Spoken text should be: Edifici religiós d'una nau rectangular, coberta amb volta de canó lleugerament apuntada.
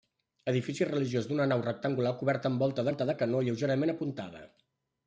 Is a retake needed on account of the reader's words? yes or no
yes